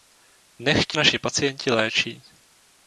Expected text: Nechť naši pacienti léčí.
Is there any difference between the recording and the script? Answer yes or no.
no